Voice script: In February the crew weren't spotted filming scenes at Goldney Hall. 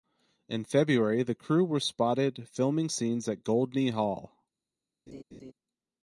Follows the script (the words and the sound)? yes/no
no